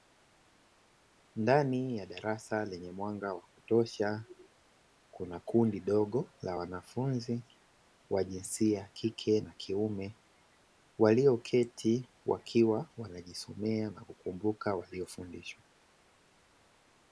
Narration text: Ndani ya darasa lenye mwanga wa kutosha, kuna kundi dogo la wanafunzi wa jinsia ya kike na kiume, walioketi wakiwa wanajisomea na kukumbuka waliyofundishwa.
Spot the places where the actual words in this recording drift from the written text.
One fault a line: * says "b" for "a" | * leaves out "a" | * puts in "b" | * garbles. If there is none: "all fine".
all fine